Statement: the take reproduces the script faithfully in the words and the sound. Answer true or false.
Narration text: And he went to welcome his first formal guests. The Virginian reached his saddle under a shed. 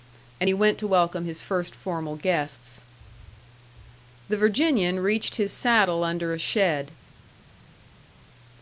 true